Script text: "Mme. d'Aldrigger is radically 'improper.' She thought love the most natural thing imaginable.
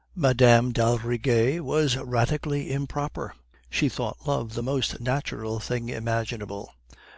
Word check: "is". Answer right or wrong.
wrong